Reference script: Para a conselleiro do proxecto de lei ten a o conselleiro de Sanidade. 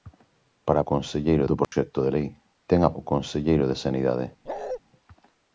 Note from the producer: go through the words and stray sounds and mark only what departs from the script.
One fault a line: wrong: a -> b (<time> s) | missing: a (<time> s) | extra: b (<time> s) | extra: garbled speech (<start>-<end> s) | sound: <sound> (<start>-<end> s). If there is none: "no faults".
sound: dropout (1.6-1.7 s)
sound: bark (4.5-4.8 s)